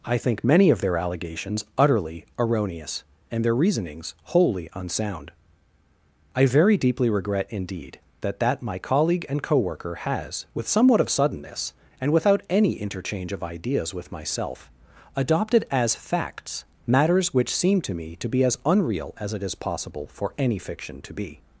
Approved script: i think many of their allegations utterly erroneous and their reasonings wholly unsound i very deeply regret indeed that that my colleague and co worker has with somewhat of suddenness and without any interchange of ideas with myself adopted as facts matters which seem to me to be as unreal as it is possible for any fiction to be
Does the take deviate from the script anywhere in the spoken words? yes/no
no